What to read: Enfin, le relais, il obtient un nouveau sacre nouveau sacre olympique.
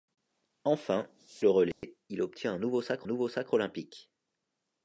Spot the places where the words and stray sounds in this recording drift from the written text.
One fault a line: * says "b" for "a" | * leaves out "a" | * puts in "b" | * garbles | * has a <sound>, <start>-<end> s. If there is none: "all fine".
* has a dropout, 1.7-1.8 s